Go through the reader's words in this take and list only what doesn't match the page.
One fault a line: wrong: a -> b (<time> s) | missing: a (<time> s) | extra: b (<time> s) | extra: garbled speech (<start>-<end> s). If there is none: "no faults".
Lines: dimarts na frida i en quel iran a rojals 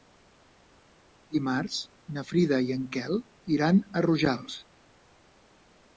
no faults